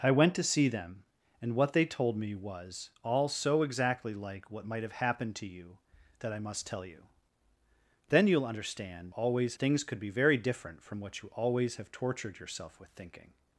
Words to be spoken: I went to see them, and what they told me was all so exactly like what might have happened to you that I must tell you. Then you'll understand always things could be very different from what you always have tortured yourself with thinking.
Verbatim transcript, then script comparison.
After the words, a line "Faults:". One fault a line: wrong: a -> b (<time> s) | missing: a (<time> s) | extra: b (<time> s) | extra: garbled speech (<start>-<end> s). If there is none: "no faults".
I went to see them, and what they told me was all so exactly like what might have happened to you that I must tell you. Then you'll understand always things could be very different from what you always have tortured yourself with thinking.
Faults:
no faults